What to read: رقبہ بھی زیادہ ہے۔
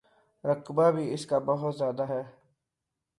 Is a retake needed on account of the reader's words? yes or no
yes